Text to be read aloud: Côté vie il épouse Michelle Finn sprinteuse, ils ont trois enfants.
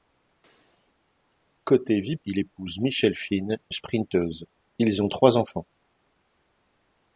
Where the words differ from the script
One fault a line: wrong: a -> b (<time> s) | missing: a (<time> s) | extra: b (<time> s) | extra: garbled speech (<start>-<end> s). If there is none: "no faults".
no faults